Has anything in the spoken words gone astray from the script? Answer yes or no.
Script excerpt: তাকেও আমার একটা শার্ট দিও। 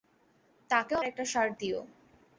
yes